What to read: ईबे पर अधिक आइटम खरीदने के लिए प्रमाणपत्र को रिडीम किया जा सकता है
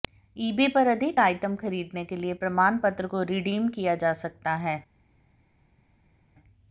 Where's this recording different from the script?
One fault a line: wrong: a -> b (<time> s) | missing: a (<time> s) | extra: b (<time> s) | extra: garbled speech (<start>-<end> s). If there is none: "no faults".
no faults